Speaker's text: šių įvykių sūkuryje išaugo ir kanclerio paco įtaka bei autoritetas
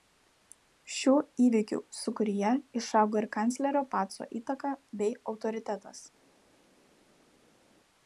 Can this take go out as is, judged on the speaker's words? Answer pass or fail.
pass